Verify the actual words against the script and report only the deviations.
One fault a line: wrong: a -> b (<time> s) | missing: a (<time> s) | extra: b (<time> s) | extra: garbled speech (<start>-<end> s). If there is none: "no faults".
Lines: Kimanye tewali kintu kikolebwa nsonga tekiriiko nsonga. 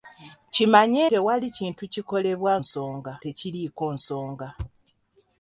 no faults